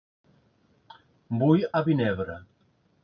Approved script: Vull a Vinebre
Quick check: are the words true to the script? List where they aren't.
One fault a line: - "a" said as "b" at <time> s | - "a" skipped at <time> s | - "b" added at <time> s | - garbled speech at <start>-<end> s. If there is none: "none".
none